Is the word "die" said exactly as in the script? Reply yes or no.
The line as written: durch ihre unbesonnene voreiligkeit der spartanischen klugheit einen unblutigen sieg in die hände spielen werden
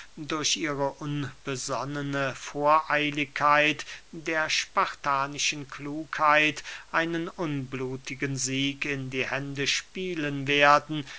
yes